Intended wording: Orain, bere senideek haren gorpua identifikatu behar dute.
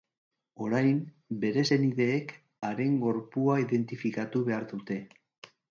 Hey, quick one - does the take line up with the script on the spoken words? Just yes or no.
yes